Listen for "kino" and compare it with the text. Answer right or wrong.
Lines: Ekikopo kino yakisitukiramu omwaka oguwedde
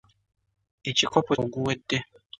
wrong